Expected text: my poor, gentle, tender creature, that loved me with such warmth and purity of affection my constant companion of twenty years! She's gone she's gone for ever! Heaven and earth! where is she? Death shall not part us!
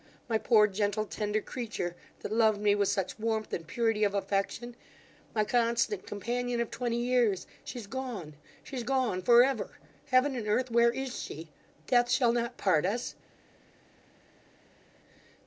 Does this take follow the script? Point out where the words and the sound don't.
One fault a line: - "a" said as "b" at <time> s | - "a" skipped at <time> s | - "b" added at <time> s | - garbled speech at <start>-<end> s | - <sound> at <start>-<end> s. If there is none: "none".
none